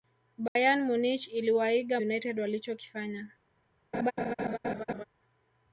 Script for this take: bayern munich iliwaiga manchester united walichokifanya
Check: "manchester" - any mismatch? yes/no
yes